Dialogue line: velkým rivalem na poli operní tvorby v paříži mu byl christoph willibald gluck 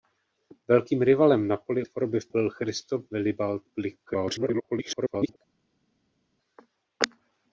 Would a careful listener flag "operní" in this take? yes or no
yes